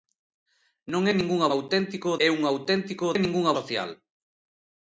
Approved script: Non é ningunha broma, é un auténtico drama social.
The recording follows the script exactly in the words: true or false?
false